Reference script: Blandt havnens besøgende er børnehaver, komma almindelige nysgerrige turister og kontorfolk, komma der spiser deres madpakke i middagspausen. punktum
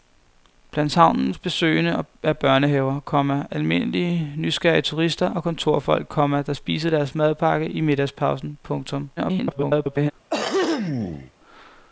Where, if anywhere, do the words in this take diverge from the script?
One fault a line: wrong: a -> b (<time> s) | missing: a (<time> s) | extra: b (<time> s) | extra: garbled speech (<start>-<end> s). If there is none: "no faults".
extra: garbled speech (9.2-10.1 s)